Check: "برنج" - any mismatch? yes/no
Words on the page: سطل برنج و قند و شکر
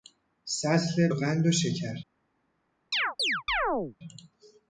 yes